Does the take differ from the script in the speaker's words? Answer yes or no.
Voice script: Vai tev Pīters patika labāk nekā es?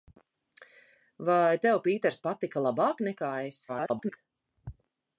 yes